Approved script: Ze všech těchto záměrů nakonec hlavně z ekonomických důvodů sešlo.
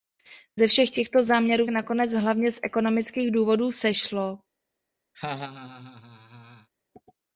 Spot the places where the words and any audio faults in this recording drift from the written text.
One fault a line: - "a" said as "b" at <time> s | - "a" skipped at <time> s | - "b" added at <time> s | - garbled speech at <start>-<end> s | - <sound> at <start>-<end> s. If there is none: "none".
- laugh at 5.1-6.7 s